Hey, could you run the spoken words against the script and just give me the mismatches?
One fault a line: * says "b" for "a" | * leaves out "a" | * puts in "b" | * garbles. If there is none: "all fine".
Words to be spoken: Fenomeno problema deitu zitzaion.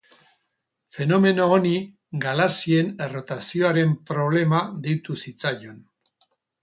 * puts in "honi galaxien errotazioaren"